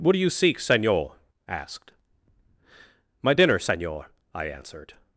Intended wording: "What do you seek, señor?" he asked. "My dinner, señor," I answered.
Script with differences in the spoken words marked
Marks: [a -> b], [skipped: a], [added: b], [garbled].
"What do you seek, señor?" [skipped: he] asked. "My dinner, señor," I answered.